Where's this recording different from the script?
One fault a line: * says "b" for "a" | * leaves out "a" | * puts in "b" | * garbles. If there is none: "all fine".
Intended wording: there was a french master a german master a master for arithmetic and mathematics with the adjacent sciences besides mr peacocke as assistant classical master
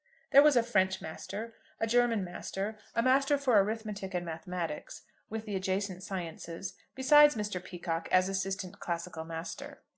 all fine